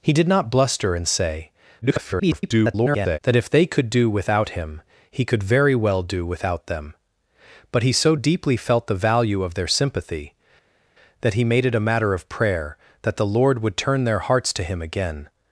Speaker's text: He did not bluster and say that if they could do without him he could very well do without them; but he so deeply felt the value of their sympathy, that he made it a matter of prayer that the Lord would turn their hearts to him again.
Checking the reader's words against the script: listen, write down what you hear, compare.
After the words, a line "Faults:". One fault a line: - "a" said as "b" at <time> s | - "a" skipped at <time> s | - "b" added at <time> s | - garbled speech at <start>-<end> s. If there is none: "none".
He did not bluster and say [garbled] that if they could do without him he could very well do without them; but he so deeply felt the value of their sympathy, that he made it a matter of prayer that the Lord would turn their hearts to him again.
Faults:
- garbled speech at 1.8-3.2 s